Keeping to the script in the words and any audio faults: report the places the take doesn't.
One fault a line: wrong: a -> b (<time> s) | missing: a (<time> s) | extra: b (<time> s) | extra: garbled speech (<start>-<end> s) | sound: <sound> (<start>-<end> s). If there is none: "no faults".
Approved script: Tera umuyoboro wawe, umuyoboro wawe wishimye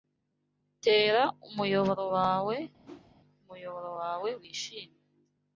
sound: whoosh (2.8-3.1 s)